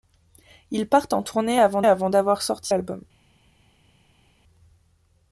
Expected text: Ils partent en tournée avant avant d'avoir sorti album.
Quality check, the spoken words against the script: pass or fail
pass